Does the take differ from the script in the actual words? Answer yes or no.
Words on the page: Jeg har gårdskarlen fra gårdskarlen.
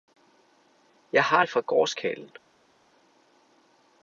yes